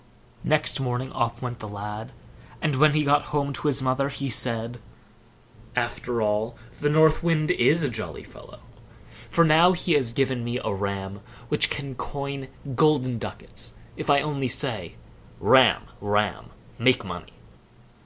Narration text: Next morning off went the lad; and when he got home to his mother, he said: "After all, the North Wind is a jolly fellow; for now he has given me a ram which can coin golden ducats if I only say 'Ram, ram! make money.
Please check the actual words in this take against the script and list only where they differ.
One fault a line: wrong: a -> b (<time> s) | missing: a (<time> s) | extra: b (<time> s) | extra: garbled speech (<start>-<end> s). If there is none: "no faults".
no faults